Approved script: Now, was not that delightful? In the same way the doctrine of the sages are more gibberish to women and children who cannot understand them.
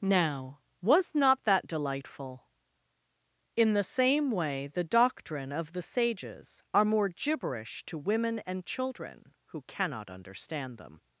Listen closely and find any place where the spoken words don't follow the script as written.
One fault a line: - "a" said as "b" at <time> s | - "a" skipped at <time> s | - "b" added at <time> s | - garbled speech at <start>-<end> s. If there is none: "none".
none